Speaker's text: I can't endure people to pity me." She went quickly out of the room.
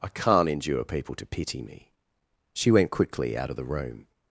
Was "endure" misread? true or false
false